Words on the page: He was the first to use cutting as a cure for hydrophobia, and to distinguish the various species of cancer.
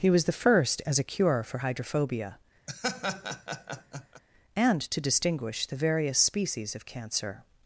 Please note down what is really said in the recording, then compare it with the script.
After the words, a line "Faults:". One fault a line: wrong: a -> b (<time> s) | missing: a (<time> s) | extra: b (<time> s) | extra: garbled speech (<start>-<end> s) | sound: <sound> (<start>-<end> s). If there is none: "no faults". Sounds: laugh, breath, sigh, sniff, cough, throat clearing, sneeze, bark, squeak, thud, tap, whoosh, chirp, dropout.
He was the first as a cure for hydrophobia, and to distinguish the various species of cancer.
Faults:
missing: to use cutting (0.8 s)
sound: laugh (2.7-4.2 s)